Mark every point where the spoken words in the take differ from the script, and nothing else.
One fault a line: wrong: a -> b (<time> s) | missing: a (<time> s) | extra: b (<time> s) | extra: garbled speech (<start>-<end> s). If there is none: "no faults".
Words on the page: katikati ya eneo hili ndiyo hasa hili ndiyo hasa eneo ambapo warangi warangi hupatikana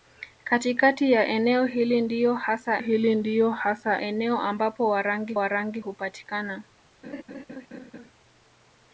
no faults